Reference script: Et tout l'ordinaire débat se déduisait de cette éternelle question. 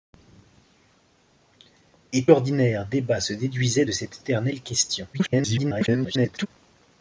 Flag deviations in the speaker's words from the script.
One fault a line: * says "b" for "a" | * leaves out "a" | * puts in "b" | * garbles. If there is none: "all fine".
* leaves out "tout"
* garbles